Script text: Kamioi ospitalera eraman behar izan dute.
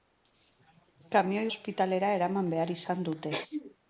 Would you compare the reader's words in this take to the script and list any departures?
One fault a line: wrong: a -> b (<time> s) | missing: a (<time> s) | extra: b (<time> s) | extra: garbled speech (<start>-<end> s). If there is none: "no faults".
no faults